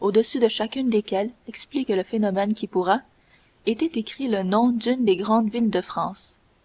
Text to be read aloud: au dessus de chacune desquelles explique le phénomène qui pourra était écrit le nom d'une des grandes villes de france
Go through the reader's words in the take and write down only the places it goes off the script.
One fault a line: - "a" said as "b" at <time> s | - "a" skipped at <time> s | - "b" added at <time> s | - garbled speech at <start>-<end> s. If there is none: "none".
none